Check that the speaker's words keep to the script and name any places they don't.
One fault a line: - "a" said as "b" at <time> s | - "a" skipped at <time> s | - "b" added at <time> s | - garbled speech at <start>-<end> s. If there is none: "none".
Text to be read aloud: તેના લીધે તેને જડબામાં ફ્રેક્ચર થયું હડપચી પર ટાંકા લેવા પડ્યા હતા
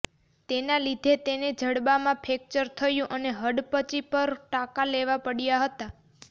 - "અને" added at 3.2 s